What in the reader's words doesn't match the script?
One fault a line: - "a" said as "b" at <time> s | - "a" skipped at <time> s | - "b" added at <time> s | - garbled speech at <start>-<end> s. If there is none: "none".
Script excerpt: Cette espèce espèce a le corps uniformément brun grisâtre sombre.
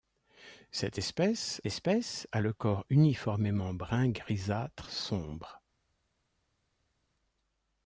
none